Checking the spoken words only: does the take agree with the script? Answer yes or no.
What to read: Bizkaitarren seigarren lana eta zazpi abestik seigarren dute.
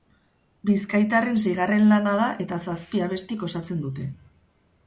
no